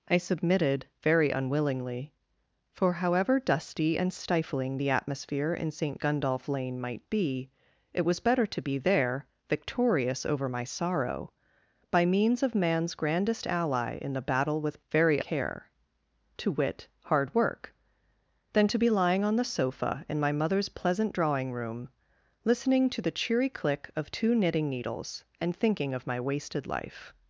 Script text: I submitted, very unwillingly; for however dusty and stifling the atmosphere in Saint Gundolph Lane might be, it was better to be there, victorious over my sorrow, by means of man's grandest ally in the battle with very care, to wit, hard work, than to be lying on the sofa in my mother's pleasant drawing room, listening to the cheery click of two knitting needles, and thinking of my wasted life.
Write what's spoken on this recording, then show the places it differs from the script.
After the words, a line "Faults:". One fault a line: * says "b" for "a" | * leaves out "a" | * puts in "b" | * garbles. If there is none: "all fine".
I submitted, very unwillingly; for however dusty and stifling the atmosphere in Saint Gundolph Lane might be, it was better to be there, victorious over my sorrow, by means of man's grandest ally in the battle with very care, to wit, hard work, than to be lying on the sofa in my mother's pleasant drawing room, listening to the cheery click of two knitting needles, and thinking of my wasted life.
Faults:
all fine